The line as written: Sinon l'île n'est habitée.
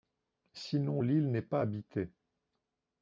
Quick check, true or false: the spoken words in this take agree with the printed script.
false